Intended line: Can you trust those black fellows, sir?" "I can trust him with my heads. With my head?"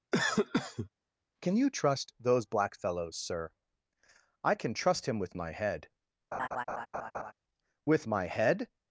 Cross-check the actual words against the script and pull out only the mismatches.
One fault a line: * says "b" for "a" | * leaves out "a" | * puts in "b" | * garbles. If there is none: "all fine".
* says "head" for "heads"